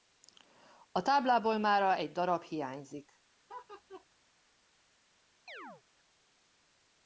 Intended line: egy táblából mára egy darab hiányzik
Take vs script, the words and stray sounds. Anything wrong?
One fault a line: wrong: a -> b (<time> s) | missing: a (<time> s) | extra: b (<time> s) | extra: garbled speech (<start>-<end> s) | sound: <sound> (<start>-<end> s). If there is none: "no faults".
wrong: egy -> a (0.9 s)
sound: laugh (3.5-4.1 s)
sound: chirp (5.5-5.8 s)